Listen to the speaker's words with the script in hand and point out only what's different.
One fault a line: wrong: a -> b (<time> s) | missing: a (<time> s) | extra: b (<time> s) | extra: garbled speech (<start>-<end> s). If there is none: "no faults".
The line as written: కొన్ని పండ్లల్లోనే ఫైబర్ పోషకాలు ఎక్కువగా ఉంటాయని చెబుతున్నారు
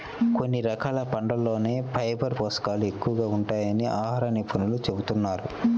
extra: రకాల (0.7 s)
extra: ఆహార నిపుణులు (4.0 s)